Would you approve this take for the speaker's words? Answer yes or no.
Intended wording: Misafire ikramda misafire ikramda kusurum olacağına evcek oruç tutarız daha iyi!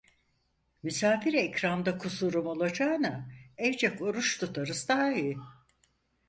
no